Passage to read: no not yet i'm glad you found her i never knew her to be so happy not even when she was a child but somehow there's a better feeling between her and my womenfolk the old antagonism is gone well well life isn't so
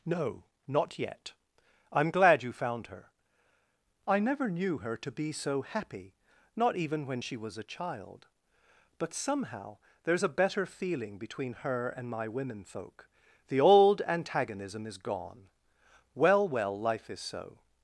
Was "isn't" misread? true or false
true